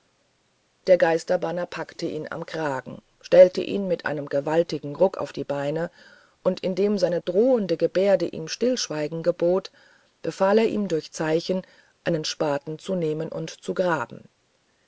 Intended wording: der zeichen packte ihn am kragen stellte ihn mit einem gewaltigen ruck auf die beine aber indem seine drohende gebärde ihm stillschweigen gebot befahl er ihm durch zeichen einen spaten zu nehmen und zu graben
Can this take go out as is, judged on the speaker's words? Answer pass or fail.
fail